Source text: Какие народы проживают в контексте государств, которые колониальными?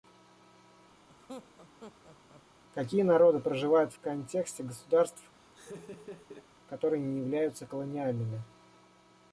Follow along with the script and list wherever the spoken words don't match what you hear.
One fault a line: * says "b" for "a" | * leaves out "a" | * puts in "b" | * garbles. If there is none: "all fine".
* puts in "не являются"